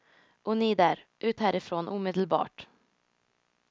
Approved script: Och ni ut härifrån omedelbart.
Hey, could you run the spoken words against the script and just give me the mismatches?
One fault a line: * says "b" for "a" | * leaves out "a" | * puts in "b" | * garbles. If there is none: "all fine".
* puts in "där"